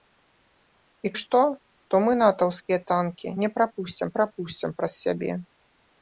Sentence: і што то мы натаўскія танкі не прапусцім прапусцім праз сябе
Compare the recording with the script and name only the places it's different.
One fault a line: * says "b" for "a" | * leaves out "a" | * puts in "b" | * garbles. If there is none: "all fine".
all fine